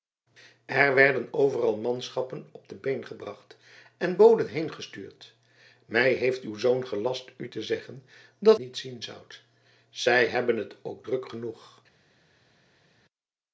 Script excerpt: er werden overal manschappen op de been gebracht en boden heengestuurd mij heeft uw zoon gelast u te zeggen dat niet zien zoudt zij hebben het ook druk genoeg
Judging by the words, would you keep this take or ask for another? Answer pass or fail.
pass